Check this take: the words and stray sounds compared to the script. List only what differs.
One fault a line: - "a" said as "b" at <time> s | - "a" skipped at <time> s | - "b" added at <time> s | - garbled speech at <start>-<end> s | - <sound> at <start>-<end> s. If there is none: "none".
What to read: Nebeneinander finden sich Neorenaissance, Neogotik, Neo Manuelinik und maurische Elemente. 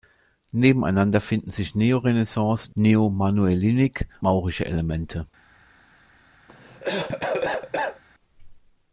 - "Neogotik" skipped at 2.8 s
- "und" skipped at 4.1 s
- cough at 6.5-8.0 s